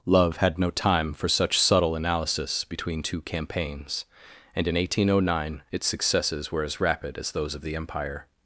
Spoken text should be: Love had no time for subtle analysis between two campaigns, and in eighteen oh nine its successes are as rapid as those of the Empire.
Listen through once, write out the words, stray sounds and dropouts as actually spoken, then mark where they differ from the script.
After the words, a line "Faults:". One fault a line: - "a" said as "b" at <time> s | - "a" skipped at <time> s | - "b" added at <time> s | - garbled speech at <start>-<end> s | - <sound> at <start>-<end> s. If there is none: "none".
Love had no time for such subtle analysis between two campaigns, and in eighteen oh nine its successes were as rapid as those of the Empire.
Faults:
- "such" added at 1.3 s
- "are" said as "were" at 6.5 s